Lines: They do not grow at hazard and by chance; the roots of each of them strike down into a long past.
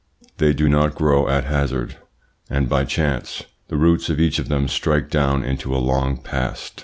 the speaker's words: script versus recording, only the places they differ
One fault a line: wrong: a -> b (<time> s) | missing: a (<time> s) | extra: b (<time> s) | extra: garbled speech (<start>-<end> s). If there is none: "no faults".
no faults